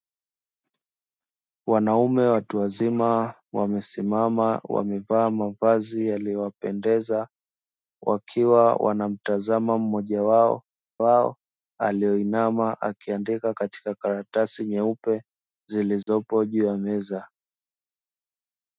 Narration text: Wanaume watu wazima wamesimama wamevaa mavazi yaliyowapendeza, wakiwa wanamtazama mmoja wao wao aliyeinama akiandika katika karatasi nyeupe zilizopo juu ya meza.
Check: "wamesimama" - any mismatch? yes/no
no